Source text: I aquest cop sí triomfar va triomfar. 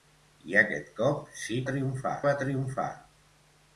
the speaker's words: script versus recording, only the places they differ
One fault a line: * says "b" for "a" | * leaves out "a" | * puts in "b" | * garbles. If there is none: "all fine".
all fine